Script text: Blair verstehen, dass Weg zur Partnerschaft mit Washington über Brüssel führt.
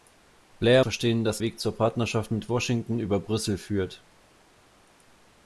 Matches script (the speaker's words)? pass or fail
pass